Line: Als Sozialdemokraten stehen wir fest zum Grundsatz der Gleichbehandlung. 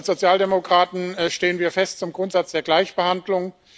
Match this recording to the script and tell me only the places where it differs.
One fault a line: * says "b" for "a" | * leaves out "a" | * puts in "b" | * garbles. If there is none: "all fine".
all fine